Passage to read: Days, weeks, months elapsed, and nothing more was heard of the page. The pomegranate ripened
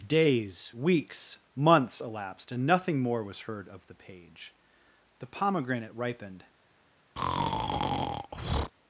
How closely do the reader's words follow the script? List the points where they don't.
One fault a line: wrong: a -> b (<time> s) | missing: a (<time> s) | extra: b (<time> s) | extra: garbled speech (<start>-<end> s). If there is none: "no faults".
no faults